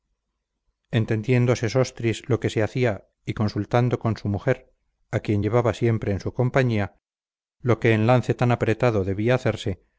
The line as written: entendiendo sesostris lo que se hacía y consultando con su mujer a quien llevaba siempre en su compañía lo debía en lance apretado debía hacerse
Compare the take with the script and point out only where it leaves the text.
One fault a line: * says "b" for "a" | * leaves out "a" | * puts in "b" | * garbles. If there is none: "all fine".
* says "que" for "debía"
* puts in "tan"